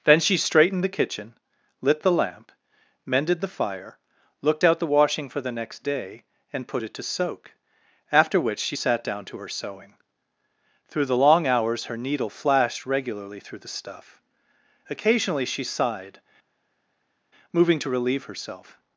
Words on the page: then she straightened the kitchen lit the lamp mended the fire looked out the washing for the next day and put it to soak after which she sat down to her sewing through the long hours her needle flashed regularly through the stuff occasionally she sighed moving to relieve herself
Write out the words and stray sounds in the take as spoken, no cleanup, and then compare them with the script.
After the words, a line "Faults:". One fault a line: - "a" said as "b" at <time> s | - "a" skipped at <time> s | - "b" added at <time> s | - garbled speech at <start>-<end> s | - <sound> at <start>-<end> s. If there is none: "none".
then she straightened the kitchen lit the lamp mended the fire looked out the washing for the next day and put it to soak after which she sat down to her sewing through the long hours her needle flashed regularly through the stuff occasionally she sighed moving to relieve herself
Faults:
none